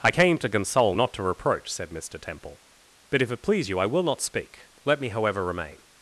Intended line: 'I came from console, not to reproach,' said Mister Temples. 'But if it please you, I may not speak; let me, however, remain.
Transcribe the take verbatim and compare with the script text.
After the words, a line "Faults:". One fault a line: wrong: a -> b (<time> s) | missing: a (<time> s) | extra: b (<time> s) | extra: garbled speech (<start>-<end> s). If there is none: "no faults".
'I came to console, not to reproach,' said Mister Temple. 'But if it please you, I will not speak; let me, however, remain.
Faults:
wrong: from -> to (0.4 s)
wrong: Temples -> Temple (2.2 s)
wrong: may -> will (3.9 s)